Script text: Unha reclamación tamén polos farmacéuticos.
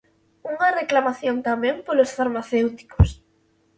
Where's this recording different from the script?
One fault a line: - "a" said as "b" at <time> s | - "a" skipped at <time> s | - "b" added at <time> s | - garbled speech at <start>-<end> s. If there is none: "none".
none